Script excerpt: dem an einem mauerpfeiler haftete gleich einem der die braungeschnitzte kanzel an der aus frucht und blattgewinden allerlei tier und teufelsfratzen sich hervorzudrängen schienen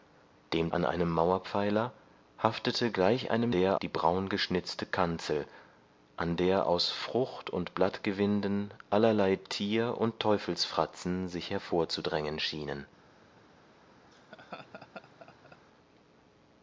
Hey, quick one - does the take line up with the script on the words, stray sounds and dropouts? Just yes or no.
no